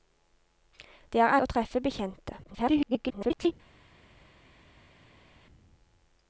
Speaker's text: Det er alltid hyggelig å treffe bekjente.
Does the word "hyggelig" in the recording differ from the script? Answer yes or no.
yes